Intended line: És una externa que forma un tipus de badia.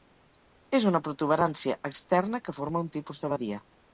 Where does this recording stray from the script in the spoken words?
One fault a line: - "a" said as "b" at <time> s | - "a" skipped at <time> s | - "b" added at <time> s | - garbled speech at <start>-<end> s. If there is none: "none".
- "protuberància" added at 1.1 s